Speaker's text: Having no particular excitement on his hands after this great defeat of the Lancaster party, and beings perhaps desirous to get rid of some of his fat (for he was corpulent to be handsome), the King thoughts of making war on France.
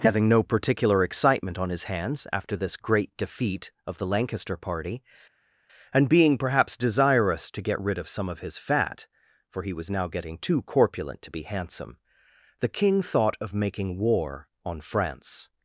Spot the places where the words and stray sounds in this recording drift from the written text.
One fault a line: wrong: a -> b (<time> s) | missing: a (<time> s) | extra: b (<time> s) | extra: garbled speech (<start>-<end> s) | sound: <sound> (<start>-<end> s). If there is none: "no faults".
wrong: beings -> being (6.1 s)
extra: now getting too (9.9 s)
wrong: thoughts -> thought (13.0 s)